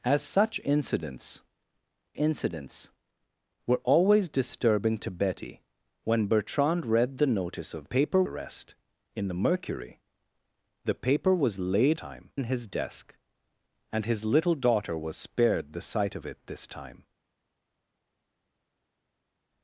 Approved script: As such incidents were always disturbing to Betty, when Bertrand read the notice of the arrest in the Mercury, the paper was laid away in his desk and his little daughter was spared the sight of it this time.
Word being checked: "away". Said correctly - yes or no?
no